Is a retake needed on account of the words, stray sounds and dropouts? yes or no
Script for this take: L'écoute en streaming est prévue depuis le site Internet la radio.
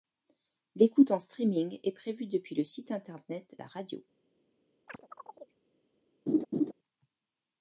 yes